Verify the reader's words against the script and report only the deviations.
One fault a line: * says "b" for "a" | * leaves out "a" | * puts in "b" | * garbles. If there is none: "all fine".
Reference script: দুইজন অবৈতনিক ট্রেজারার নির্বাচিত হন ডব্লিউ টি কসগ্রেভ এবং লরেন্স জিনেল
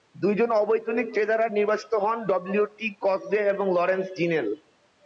all fine